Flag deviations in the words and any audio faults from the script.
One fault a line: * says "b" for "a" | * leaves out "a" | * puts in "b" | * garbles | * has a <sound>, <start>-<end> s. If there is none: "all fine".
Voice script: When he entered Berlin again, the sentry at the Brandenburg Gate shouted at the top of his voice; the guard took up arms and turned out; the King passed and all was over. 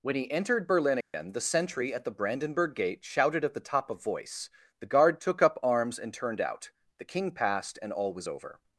* has a dropout, 1.0-1.1 s
* leaves out "his"